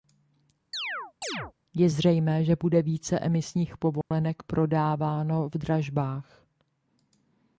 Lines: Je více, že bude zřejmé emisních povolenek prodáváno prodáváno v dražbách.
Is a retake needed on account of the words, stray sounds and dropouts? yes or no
yes